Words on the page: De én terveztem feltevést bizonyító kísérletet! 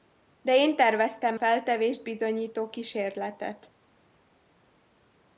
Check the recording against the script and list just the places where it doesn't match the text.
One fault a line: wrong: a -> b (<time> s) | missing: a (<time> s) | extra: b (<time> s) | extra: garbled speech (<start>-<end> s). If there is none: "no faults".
no faults